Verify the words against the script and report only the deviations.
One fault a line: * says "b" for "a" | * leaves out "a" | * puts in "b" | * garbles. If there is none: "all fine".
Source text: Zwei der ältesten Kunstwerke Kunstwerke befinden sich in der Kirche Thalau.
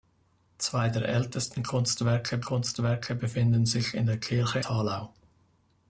all fine